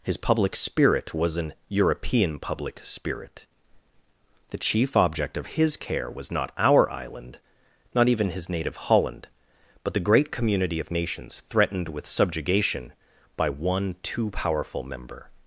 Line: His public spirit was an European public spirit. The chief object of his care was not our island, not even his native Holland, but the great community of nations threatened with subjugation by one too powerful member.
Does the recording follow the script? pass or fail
pass